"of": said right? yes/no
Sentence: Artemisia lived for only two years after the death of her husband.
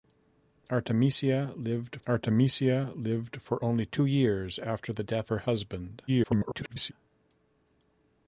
no